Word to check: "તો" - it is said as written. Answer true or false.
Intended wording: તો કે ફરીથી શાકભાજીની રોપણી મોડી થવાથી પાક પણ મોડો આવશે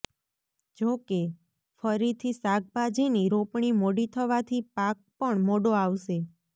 false